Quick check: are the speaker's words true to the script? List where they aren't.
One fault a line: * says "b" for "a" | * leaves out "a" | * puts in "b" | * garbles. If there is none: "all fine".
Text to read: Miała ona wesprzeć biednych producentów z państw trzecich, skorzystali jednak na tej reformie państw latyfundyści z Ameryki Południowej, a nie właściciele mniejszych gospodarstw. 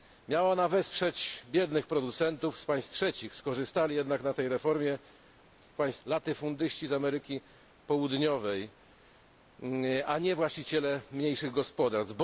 all fine